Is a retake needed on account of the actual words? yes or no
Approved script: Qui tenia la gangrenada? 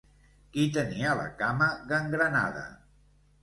yes